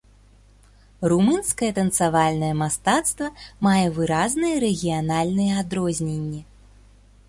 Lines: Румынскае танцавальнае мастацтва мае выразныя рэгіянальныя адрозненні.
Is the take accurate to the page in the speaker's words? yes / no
yes